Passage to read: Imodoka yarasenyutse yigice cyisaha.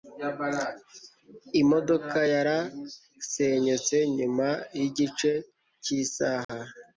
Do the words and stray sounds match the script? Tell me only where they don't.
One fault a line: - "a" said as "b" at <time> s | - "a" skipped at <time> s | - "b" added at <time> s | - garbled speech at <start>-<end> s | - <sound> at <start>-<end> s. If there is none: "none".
- "nyuma" added at 4.2 s
- dropout at 6.4-6.5 s